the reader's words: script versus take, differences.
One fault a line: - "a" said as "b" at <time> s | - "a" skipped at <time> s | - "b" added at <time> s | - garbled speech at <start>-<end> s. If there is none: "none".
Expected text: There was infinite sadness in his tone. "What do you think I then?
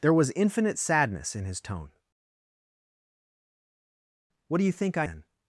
none